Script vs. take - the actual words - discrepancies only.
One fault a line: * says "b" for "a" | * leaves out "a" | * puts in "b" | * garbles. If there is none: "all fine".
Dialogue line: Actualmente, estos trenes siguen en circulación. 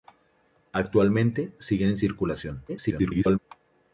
* leaves out "estos trenes"
* garbles